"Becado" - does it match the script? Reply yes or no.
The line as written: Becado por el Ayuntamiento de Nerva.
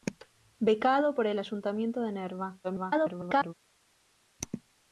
yes